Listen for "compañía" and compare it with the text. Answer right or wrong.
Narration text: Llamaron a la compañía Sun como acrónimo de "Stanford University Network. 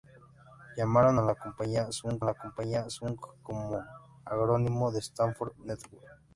right